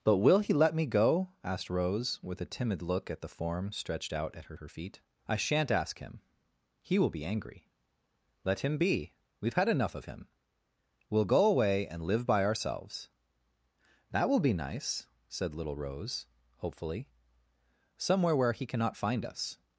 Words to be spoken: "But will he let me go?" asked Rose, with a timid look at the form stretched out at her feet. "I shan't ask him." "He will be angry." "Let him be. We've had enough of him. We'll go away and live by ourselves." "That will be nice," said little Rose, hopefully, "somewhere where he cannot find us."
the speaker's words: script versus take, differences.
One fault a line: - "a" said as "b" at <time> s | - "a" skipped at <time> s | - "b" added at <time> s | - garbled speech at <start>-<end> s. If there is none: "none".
- "her" added at 4.6 s